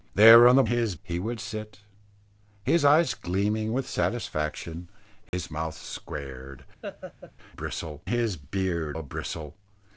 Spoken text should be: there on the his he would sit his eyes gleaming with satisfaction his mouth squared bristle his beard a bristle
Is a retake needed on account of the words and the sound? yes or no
yes